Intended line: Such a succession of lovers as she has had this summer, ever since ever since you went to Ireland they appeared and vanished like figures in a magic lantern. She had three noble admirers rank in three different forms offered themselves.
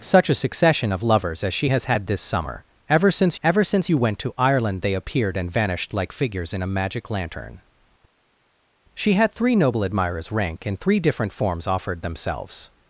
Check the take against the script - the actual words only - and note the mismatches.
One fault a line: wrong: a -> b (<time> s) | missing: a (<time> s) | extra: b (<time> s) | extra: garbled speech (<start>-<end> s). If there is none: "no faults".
no faults